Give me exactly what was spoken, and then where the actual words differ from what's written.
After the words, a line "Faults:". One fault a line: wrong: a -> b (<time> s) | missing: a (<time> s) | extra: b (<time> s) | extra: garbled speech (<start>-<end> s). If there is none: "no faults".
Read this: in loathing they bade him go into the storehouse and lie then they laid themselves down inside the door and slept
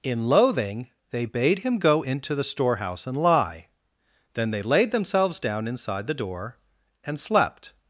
in loathing they bade him go into the storehouse and lie then they laid themselves down inside the door and slept
Faults:
no faults